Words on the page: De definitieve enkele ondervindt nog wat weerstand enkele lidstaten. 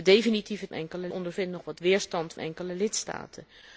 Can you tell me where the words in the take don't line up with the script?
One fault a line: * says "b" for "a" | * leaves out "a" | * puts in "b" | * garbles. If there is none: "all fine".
all fine